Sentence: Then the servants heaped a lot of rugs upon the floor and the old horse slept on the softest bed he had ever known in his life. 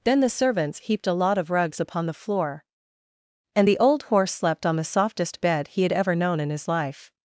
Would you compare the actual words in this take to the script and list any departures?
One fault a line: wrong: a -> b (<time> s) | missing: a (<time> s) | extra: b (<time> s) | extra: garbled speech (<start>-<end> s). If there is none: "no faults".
no faults